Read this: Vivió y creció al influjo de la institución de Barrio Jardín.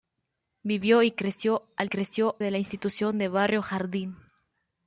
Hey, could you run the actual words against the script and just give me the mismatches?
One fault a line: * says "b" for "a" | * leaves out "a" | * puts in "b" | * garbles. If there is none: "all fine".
* says "creció" for "influjo"